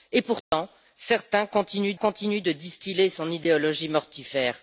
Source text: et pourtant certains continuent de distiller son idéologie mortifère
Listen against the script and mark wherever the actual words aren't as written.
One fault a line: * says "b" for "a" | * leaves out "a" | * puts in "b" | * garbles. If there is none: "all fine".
* puts in "continuent"